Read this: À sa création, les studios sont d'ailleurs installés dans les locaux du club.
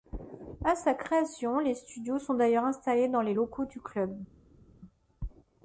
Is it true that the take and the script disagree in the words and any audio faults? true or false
false